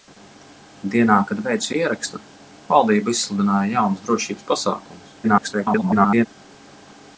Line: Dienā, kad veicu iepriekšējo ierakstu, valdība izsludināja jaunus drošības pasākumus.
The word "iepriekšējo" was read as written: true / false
false